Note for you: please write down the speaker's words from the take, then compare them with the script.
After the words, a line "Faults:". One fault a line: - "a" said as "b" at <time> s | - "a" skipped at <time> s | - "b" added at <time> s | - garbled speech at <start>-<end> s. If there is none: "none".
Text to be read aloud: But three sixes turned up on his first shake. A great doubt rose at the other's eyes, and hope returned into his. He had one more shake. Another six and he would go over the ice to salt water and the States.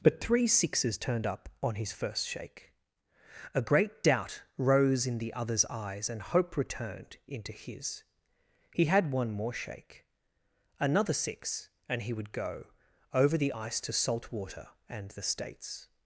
But three sixes turned up on his first shake. A great doubt rose in the other's eyes, and hope returned into his. He had one more shake. Another six and he would go over the ice to salt water and the States.
Faults:
- "at" said as "in" at 5.1 s